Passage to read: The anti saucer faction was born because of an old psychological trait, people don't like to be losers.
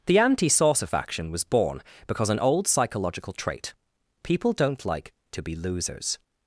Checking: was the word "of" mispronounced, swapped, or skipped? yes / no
yes